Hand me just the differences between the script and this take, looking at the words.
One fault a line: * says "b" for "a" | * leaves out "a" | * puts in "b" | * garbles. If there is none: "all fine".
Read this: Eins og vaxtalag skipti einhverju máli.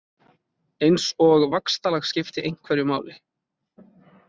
all fine